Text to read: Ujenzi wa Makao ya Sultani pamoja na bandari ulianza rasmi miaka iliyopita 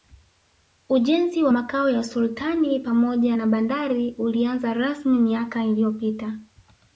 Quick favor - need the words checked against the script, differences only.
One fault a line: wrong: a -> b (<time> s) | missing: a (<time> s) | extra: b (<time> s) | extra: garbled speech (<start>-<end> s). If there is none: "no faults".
no faults